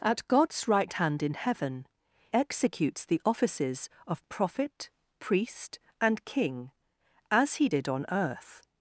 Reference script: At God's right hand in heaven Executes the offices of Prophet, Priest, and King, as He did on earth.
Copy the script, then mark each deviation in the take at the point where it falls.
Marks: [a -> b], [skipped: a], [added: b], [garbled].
At God's right hand in heaven Executes the offices of Prophet, Priest, and King, as He did on earth.